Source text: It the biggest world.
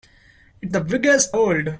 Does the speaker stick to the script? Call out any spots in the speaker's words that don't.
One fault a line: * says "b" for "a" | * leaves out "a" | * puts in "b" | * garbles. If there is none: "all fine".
all fine